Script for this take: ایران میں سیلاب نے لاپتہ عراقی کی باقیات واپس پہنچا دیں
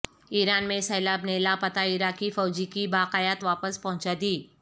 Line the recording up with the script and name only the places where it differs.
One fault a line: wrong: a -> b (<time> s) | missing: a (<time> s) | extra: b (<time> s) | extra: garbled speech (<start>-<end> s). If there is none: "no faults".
extra: فوجی (2.3 s)